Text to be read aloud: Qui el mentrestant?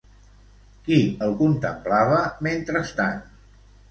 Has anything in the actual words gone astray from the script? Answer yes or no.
yes